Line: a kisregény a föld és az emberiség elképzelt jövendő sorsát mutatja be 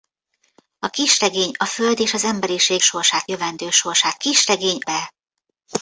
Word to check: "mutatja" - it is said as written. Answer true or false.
false